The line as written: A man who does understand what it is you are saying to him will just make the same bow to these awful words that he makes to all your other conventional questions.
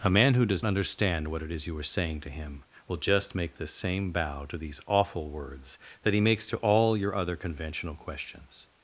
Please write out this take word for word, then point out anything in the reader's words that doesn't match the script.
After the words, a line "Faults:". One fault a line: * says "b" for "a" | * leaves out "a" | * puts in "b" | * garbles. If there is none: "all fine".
A man who does understand what it is you are saying to him will just make the same bow to these awful words that he makes to all your other conventional questions.
Faults:
all fine